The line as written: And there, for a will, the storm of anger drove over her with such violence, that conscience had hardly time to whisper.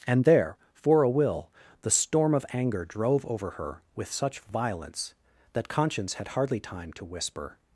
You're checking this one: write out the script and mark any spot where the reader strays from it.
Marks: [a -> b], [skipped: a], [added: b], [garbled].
And there, for a will, the storm of anger drove over her with such violence, that conscience had hardly time to whisper.